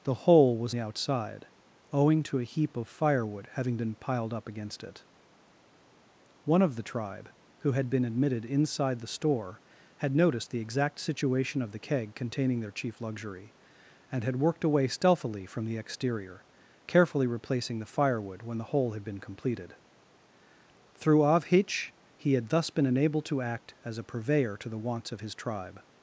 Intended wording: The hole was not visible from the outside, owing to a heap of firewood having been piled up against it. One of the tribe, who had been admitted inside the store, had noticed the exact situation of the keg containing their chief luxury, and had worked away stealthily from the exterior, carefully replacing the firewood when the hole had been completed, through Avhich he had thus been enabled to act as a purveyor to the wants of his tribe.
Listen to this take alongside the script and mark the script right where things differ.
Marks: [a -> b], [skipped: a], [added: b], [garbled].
The hole was [skipped: not visible from] the outside, owing to a heap of firewood having been piled up against it. One of the tribe, who had been admitted inside the store, had noticed the exact situation of the keg containing their chief luxury, and had worked away stealthily from the exterior, carefully replacing the firewood when the hole had been completed, through Avhich he had thus been enabled to act as a purveyor to the wants of his tribe.